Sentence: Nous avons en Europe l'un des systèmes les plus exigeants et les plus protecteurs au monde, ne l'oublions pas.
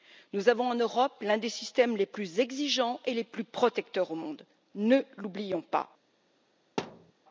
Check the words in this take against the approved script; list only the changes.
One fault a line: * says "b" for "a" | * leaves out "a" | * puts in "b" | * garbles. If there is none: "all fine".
all fine